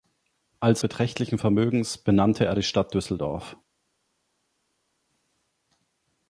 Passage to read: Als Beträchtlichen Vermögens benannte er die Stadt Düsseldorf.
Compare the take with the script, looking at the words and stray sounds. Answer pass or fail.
pass